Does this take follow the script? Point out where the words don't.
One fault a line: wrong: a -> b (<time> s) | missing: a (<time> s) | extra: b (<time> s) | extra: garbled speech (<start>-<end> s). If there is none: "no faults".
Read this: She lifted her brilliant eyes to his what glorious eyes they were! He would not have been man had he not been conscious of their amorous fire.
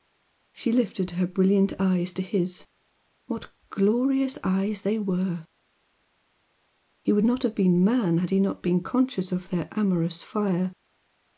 no faults